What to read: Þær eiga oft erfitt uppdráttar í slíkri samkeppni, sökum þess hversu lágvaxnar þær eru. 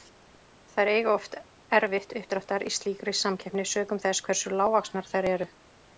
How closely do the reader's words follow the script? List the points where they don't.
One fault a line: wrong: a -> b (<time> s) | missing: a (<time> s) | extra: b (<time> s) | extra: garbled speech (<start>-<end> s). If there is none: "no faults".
no faults